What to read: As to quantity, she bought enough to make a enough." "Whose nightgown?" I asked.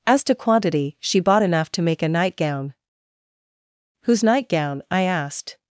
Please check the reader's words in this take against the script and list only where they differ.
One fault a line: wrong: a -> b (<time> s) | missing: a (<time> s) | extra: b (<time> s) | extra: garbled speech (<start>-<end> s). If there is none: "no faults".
wrong: enough -> nightgown (2.1 s)